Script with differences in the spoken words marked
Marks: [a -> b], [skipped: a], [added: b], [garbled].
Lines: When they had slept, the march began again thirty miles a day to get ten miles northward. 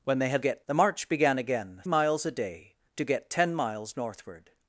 When they had [slept, -> get] the march began again [skipped: thirty] miles a day to get ten miles northward.